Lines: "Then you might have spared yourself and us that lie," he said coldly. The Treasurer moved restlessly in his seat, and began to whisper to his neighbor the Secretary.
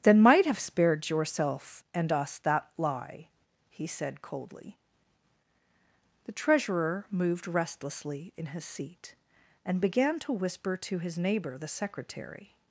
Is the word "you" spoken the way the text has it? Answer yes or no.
no